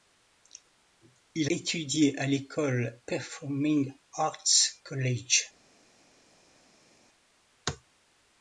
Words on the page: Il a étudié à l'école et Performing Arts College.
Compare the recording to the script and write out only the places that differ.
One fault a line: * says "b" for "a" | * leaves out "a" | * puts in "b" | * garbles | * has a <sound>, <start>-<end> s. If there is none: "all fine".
* leaves out "a"
* leaves out "et"